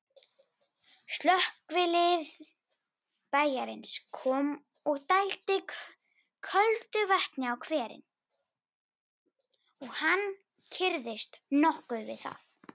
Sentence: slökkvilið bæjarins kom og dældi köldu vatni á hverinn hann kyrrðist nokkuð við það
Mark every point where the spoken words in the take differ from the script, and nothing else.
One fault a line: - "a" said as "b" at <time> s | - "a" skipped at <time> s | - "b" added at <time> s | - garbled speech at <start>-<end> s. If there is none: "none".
- "og" added at 9.8 s